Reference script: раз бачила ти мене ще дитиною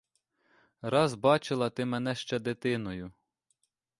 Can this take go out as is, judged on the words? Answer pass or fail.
pass